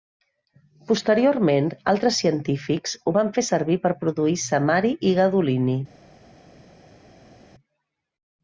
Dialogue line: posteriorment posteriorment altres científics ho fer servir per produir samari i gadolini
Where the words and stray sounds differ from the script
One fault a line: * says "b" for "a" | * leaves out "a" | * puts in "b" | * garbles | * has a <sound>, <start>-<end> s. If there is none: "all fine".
* leaves out "posteriorment"
* puts in "van"